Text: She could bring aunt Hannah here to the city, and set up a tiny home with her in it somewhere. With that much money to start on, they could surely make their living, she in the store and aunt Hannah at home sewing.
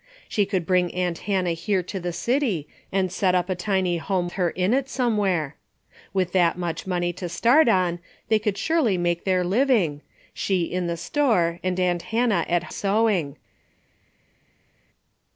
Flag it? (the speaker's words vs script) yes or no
yes